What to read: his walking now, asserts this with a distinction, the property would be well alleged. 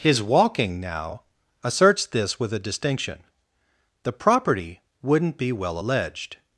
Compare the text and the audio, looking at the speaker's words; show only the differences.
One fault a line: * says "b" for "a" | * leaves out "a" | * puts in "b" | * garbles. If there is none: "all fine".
* says "wouldn't" for "would"